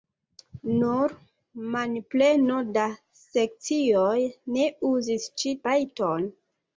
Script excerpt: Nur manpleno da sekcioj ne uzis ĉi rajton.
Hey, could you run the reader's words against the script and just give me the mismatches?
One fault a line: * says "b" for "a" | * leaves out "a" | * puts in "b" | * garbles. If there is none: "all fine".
all fine